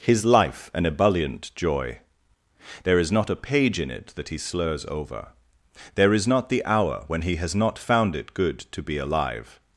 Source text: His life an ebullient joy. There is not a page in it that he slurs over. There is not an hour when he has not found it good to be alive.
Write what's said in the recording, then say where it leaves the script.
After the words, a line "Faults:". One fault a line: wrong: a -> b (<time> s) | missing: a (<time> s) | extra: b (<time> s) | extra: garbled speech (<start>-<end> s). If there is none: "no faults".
His life an ebullient joy. There is not a page in it that he slurs over. There is not the hour when he has not found it good to be alive.
Faults:
wrong: an -> the (6.5 s)